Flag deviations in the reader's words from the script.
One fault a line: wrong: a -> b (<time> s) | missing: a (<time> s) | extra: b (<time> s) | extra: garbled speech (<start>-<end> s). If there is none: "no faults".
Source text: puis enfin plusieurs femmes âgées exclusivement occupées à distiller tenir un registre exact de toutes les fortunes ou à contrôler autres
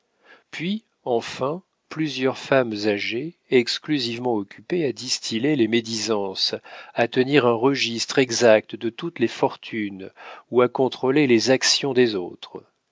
extra: les médisances à (5.5 s)
extra: les actions des (11.3 s)